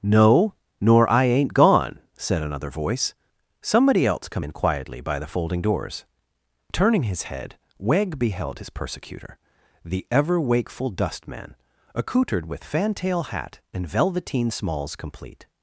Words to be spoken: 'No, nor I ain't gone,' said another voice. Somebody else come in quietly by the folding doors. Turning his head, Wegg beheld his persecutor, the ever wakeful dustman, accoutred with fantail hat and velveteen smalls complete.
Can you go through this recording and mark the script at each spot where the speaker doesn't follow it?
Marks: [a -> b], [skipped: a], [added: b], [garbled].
'No, nor I ain't gone,' said another voice. Somebody else come in quietly by the folding doors. Turning his head, Wegg beheld his persecutor, the ever wakeful dustman, accoutred with fantail hat and velveteen smalls complete.